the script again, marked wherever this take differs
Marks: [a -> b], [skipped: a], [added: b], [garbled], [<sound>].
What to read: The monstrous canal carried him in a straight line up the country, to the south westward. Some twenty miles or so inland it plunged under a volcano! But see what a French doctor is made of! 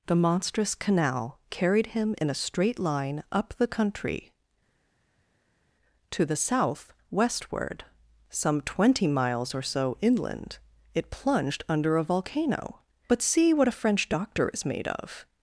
The monstrous canal carried him in a straight line up the country, to the south westward. Some twenty miles or so inland it plunged under a volcano! But see what a French doctor is made of!